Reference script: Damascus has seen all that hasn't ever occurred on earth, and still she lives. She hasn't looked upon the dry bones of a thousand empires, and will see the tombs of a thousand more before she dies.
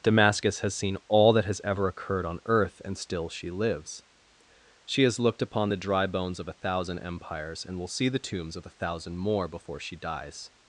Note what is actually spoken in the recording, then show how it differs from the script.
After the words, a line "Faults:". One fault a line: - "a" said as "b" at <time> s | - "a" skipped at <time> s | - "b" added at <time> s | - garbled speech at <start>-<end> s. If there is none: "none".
Damascus has seen all that has ever occurred on earth, and still she lives. She has looked upon the dry bones of a thousand empires, and will see the tombs of a thousand more before she dies.
Faults:
- "hasn't" said as "has" at 1.4 s
- "hasn't" said as "has" at 5.0 s